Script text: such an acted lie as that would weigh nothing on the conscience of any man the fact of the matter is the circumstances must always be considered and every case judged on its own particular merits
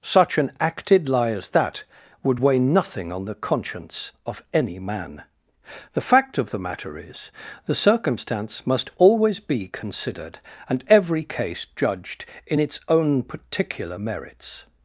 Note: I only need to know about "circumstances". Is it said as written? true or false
false